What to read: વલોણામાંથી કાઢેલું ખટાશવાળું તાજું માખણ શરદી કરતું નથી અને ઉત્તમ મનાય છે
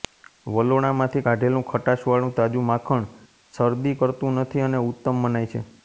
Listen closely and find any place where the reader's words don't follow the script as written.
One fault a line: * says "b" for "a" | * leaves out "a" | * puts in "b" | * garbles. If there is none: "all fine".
all fine